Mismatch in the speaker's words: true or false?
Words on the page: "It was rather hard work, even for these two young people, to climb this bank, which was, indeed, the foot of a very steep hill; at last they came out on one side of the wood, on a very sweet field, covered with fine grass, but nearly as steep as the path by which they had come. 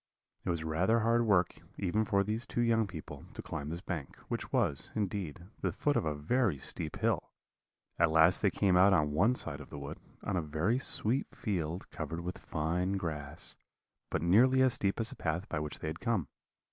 false